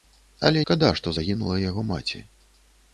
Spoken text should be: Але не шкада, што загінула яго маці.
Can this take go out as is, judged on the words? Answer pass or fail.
fail